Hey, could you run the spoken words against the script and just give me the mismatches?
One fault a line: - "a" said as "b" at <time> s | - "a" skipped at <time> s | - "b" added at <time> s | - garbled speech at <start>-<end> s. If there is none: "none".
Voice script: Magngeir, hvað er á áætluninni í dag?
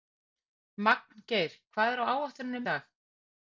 none